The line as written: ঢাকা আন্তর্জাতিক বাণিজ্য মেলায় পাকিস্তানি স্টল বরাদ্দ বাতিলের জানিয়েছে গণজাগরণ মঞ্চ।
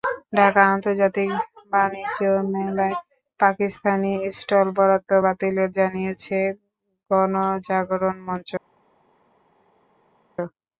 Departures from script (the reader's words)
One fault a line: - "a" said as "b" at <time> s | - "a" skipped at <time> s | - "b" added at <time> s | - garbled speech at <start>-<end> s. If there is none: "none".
none